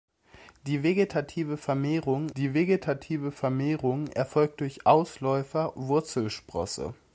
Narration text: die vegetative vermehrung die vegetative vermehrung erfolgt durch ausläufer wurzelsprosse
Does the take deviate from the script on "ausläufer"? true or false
false